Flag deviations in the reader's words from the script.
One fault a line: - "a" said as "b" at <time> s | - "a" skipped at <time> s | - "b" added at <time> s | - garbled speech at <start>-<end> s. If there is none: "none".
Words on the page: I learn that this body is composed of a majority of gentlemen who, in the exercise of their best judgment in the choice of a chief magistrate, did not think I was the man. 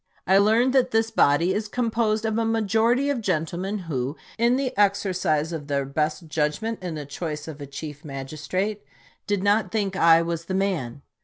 none